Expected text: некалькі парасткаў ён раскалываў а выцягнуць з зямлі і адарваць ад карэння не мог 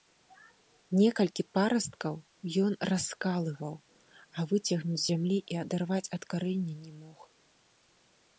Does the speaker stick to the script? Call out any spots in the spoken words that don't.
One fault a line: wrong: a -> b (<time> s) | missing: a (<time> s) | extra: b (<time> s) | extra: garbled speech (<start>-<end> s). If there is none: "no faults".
no faults